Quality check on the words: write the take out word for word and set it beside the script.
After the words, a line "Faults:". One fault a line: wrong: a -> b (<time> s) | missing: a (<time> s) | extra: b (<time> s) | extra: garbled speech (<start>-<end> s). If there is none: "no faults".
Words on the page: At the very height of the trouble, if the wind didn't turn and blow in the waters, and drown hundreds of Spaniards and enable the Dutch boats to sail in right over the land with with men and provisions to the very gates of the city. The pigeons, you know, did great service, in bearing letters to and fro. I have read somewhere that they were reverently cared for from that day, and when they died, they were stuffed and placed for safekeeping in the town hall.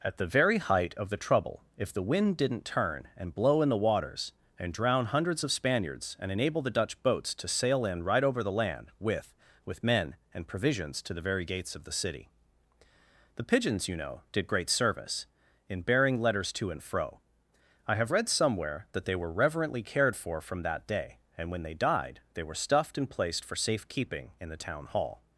At the very height of the trouble, if the wind didn't turn and blow in the waters, and drown hundreds of Spaniards and enable the Dutch boats to sail in right over the land with with men and provisions to the very gates of the city. The pigeons, you know, did great service, in bearing letters to and fro. I have read somewhere that they were reverently cared for from that day, and when they died, they were stuffed and placed for safekeeping in the town hall.
Faults:
no faults